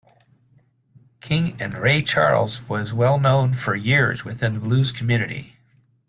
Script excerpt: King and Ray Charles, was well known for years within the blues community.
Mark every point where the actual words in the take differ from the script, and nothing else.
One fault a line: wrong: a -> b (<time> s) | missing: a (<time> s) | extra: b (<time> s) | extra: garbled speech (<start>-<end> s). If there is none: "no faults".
no faults